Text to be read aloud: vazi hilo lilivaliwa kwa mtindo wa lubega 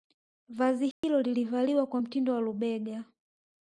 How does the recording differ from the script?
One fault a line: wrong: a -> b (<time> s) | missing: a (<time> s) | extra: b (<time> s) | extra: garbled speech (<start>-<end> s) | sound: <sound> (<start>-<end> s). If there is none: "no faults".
sound: dropout (0.9-1.0 s)